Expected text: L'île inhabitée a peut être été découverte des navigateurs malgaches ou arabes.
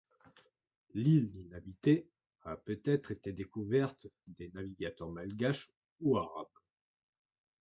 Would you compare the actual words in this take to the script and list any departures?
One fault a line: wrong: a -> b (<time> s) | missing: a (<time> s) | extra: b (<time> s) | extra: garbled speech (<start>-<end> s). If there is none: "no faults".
no faults